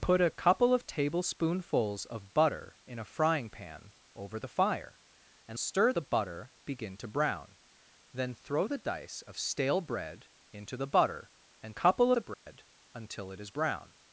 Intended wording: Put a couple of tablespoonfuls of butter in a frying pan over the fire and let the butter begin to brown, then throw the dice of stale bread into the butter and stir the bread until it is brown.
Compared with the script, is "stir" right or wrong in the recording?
wrong